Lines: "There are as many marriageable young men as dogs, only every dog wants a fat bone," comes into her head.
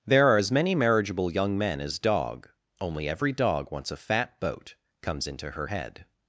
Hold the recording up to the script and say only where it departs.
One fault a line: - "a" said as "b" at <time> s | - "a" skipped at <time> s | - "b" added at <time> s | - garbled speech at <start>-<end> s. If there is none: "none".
- "dogs" said as "dog" at 2.0 s
- "bone" said as "boat" at 4.4 s